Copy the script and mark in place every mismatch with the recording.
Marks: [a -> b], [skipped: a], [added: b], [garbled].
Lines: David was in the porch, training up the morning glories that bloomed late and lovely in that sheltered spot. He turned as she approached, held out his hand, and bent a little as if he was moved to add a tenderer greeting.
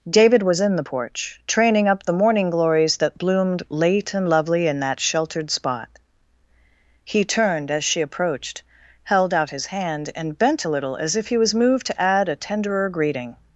David was in the porch, training up the morning glories that bloomed late and lovely in that sheltered spot. He turned as she approached, held out his hand, and bent a little as if he was moved to add a tenderer greeting.